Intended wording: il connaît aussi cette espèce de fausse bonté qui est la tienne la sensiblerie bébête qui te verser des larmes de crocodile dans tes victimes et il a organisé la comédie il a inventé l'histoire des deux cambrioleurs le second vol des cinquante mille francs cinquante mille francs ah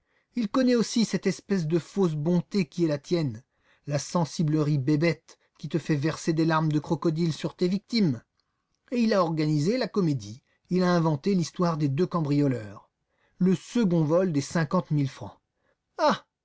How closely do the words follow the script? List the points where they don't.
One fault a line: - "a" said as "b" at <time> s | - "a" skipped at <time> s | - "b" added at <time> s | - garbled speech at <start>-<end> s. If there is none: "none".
- "fait" added at 5.8 s
- "dans" said as "sur" at 7.3 s
- "cinquante mille francs" skipped at 15.4 s